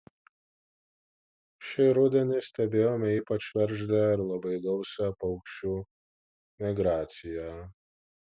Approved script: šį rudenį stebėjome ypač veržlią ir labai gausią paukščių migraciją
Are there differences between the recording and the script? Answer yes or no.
no